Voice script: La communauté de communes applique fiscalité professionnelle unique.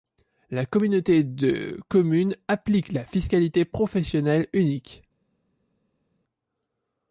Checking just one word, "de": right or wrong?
right